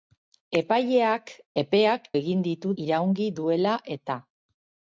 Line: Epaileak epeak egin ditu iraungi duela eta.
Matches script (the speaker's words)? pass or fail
pass